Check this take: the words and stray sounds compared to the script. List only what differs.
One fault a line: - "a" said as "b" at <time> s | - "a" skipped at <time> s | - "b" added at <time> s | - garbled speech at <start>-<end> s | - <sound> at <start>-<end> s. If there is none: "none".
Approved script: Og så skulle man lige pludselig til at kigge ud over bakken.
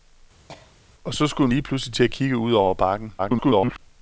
- cough at 0.5-0.8 s
- "man" skipped at 1.5 s
- garbled speech at 3.2-3.8 s